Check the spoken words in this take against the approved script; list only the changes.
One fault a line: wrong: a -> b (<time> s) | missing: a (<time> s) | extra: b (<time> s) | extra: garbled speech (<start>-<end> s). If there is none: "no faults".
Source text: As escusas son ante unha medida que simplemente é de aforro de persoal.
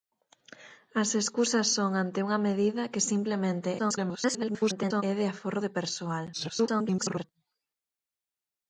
extra: garbled speech (3.8-5.0 s)
extra: garbled speech (6.3-7.2 s)